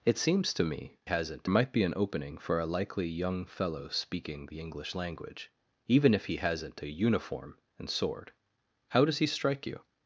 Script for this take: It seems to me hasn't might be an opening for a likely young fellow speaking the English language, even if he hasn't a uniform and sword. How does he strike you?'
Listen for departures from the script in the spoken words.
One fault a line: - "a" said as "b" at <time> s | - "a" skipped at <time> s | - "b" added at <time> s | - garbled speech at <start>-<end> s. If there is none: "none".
none